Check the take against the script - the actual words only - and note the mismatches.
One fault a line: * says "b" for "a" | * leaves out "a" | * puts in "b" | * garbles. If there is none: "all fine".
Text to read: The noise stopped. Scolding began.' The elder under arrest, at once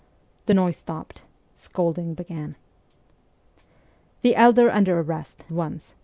* leaves out "at"